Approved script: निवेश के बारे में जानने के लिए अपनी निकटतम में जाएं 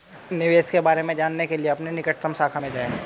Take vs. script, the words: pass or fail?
fail